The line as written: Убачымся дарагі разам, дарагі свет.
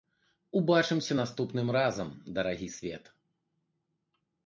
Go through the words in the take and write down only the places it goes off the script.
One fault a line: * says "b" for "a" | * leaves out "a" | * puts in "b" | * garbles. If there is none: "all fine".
* says "наступным" for "дарагі"